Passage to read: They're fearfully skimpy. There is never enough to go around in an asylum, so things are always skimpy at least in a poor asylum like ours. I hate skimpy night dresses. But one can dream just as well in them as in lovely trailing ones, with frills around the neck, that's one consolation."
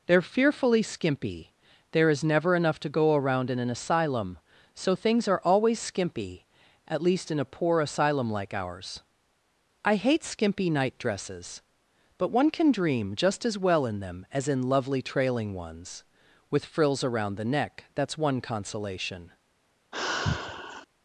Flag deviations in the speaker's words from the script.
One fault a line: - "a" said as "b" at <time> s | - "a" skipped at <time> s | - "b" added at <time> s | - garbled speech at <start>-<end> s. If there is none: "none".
none